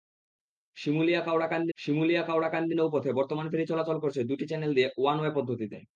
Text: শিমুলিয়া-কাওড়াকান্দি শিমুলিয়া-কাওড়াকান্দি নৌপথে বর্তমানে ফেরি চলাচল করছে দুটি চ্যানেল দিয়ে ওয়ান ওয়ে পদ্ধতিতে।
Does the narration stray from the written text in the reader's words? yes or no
no